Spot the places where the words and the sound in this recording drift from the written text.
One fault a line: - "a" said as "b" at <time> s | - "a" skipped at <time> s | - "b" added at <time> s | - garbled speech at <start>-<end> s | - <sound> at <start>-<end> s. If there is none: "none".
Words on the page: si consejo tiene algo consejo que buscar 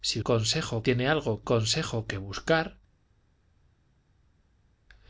none